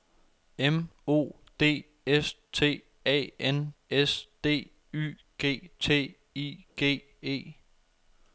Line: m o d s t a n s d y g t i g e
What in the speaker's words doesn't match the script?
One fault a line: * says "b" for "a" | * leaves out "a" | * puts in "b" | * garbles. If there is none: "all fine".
all fine